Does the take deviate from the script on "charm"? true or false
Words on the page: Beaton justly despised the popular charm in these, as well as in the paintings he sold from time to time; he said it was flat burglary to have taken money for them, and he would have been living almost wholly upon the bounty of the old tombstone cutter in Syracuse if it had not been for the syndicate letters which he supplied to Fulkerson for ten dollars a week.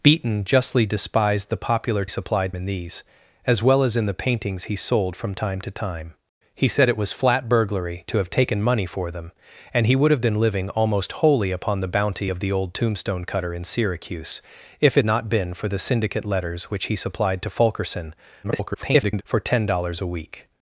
true